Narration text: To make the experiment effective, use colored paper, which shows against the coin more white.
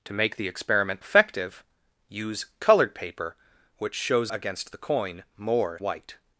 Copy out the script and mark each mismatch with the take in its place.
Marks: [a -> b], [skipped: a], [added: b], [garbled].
To make the experiment effective, use colored paper, which shows against the coin more white.